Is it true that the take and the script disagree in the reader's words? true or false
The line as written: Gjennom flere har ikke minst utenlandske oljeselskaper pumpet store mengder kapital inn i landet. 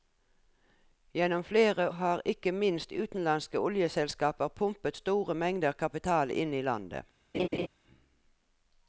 false